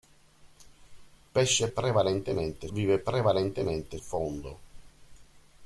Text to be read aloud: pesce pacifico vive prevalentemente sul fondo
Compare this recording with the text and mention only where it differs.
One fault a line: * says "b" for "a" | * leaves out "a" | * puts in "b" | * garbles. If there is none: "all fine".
* says "prevalentemente" for "pacifico"
* leaves out "sul"